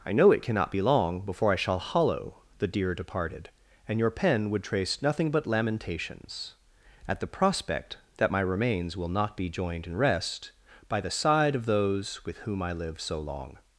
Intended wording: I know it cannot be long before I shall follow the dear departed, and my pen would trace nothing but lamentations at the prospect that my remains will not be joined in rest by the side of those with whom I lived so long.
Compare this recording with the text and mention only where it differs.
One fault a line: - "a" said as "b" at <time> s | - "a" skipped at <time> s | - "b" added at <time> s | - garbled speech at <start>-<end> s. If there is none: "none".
- "follow" said as "hollow" at 1.8 s
- "my" said as "your" at 4.0 s